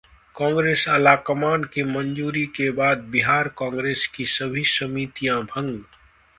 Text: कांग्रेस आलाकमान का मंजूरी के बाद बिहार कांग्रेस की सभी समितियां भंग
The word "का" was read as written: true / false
false